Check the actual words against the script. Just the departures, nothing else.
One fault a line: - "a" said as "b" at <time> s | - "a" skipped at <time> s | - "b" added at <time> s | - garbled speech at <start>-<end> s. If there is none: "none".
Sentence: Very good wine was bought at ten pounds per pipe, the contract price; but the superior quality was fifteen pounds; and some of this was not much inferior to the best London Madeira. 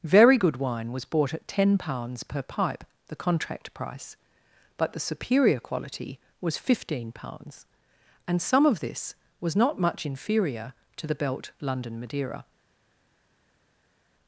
- "best" said as "belt" at 11.1 s